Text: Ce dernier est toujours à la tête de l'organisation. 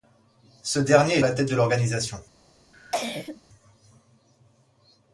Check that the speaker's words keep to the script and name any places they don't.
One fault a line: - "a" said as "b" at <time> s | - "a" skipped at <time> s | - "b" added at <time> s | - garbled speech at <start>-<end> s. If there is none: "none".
- "est toujours" skipped at 1.2 s